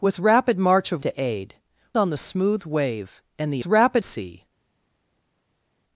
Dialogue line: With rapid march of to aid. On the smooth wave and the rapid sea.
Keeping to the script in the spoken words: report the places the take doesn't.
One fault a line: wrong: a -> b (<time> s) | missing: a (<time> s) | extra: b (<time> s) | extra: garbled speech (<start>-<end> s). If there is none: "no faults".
no faults